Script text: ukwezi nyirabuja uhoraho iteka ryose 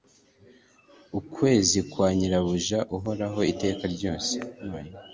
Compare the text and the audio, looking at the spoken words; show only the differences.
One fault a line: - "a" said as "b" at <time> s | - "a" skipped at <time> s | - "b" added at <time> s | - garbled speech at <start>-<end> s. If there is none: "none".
- "kwa" added at 1.9 s